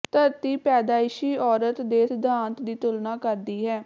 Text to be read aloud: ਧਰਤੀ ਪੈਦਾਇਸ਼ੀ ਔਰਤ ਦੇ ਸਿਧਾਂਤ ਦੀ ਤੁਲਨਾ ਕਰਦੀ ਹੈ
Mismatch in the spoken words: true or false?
false